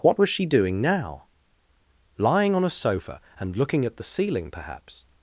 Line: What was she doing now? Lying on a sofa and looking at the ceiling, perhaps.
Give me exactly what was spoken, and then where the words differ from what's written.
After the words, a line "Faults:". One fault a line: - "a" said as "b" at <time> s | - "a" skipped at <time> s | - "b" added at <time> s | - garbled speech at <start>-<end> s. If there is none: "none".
What was she doing now? Lying on a sofa and looking at the ceiling, perhaps.
Faults:
none